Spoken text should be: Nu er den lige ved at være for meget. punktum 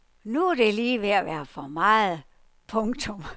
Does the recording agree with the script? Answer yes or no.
no